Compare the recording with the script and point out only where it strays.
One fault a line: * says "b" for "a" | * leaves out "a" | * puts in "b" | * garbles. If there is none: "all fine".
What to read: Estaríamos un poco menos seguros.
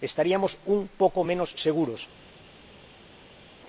all fine